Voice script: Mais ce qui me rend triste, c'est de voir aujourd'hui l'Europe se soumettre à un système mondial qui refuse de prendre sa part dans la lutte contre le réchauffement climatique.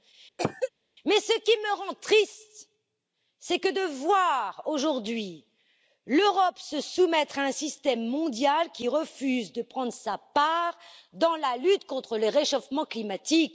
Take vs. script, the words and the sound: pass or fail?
fail